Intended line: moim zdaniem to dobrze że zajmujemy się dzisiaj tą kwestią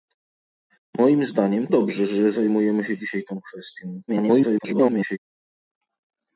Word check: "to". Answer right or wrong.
wrong